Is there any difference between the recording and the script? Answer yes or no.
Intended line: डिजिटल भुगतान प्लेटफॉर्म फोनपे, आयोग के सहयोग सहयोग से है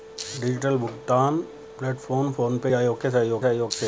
no